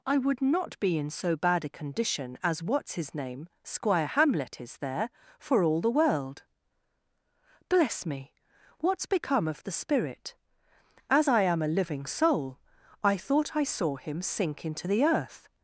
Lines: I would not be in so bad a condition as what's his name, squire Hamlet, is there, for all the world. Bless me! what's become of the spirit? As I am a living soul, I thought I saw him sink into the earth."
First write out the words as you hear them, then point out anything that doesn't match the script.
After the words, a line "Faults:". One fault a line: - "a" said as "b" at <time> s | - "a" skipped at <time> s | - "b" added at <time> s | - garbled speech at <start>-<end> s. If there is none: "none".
I would not be in so bad a condition as what's his name, squire Hamlet, is there, for all the world. Bless me! what's become of the spirit? As I am a living soul, I thought I saw him sink into the earth."
Faults:
none